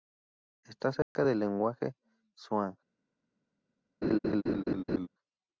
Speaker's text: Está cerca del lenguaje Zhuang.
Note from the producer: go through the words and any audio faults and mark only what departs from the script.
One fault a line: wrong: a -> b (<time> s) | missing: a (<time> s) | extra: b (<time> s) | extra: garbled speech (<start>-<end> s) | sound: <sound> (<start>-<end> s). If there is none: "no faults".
sound: dropout (1.0-1.2 s)
sound: laugh (4.0-5.1 s)